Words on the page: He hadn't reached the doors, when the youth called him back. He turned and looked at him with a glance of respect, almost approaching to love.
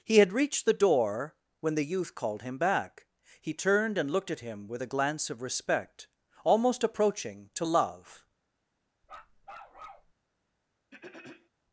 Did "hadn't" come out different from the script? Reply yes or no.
yes